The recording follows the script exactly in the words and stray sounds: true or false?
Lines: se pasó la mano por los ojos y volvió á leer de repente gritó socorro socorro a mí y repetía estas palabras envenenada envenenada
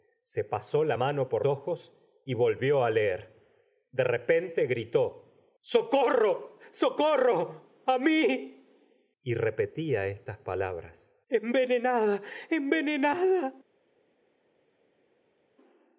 false